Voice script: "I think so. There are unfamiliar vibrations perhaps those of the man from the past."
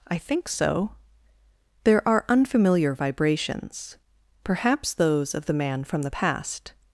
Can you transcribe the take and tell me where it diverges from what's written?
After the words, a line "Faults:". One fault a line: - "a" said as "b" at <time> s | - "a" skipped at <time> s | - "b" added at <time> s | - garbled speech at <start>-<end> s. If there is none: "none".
"I think so. There are unfamiliar vibrations perhaps those of the man from the past."
Faults:
none